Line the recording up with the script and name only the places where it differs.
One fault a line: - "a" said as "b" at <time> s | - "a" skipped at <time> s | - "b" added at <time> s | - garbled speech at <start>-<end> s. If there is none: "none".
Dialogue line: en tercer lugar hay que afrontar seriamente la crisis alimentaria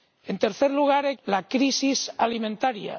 - "que afrontar seriamente" skipped at 1.1 s